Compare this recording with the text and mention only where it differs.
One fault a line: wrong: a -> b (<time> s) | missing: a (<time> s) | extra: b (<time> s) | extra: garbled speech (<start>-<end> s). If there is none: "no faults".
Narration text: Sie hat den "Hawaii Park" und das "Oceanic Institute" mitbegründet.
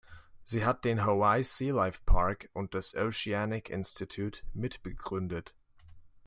extra: Sea Life (1.4 s)